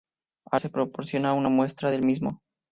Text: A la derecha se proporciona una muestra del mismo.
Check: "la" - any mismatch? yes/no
yes